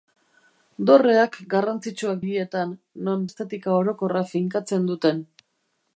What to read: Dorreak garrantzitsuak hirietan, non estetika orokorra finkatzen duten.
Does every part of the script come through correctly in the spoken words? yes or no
yes